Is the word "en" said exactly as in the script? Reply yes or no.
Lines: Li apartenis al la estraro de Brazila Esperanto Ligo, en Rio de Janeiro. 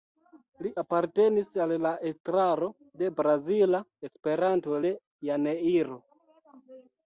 no